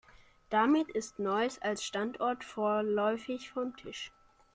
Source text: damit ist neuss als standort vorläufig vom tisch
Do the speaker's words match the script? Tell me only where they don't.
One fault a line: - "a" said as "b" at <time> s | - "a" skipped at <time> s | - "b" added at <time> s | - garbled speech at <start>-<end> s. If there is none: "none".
none